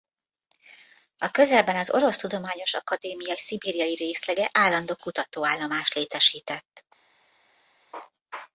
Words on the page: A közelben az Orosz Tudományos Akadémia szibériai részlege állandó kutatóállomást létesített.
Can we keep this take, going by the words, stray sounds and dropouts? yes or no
yes